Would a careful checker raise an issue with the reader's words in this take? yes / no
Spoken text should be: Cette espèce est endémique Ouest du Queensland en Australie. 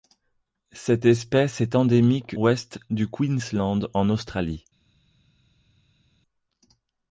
no